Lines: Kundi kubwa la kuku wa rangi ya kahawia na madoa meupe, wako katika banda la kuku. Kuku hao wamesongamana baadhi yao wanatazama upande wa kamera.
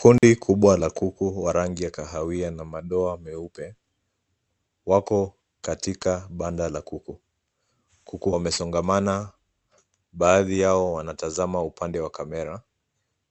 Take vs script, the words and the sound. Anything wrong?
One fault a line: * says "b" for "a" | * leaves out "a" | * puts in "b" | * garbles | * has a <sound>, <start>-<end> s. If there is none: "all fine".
* has a dropout, 0.2-0.2 s
* leaves out "hao"